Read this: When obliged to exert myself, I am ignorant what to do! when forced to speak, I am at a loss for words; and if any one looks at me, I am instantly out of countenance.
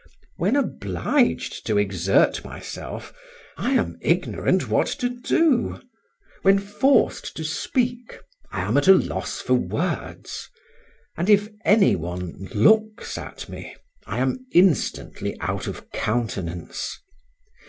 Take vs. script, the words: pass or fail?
pass